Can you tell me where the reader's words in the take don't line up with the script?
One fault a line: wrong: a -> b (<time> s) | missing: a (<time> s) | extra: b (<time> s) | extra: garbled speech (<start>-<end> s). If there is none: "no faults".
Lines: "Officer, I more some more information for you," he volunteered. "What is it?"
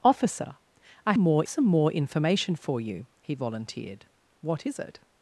no faults